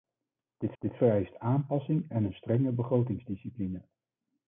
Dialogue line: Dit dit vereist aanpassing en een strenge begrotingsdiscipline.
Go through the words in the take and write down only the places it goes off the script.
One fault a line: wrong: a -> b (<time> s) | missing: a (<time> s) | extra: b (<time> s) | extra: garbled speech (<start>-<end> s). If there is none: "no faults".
no faults